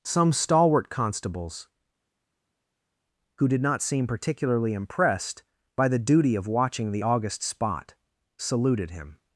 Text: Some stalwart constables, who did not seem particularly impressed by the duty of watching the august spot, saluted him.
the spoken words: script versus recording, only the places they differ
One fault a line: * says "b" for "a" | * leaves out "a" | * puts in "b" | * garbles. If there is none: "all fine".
all fine